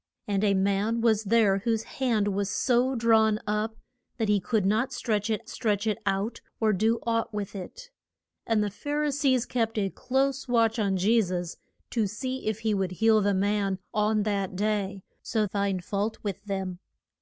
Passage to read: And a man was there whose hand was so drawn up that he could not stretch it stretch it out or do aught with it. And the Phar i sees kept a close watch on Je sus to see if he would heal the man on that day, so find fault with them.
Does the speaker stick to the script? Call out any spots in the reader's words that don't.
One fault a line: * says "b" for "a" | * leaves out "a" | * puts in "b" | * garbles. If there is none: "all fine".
all fine